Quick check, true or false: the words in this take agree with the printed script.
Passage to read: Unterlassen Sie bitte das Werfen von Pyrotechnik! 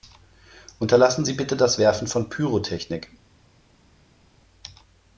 true